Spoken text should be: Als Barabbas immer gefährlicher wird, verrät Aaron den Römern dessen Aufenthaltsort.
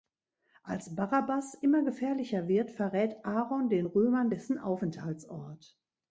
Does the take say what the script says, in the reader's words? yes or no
yes